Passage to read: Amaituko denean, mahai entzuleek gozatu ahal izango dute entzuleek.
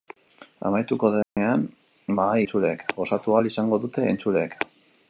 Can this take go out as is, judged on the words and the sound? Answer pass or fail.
fail